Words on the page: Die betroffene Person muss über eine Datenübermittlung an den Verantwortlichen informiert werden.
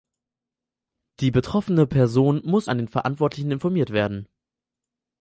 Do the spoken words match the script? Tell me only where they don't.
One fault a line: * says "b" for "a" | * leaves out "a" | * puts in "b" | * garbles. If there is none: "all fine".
* leaves out "über eine Datenübermittlung"